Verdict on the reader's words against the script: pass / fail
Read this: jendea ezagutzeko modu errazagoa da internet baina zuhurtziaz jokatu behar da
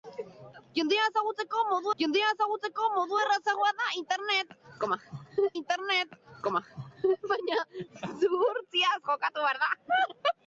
fail